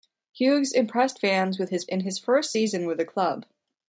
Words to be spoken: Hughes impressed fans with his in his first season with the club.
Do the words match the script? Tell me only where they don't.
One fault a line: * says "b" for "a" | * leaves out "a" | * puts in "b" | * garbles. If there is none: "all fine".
all fine